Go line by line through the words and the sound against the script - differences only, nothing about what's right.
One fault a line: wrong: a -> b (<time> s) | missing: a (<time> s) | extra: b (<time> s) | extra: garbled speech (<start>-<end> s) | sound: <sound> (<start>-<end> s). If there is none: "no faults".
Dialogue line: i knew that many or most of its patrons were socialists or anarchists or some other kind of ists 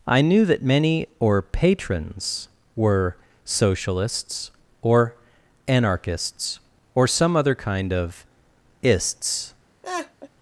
missing: most of its (1.4 s)
sound: laugh (9.8-10.3 s)